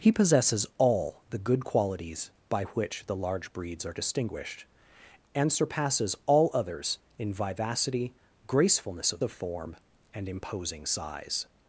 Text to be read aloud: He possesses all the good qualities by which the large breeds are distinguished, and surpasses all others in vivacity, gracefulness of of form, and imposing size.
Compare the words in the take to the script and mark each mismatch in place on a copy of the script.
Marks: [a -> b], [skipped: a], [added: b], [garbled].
He possesses all the good qualities by which the large breeds are distinguished, and surpasses all others in vivacity, gracefulness of of form, and imposing size.